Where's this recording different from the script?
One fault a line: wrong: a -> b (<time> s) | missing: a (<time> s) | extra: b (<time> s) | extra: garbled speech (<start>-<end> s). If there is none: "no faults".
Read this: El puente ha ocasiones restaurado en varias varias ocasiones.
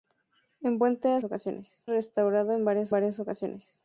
no faults